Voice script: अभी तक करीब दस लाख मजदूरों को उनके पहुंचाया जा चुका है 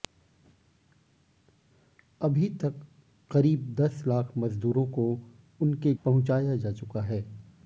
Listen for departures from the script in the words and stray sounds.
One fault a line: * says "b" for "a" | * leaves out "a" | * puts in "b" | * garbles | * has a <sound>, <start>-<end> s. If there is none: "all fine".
all fine